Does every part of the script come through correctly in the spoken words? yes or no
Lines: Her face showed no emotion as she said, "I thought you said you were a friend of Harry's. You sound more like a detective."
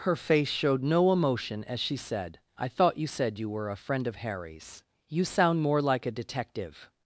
yes